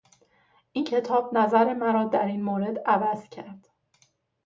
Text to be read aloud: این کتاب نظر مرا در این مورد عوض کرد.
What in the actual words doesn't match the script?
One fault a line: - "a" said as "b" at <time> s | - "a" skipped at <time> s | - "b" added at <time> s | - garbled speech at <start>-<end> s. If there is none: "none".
none